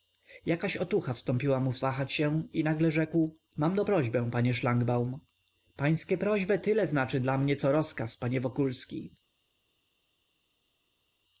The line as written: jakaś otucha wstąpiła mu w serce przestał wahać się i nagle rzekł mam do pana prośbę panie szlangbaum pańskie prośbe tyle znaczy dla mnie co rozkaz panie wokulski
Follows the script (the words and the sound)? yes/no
no